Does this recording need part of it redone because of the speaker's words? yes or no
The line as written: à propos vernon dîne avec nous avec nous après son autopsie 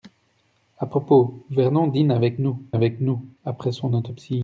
no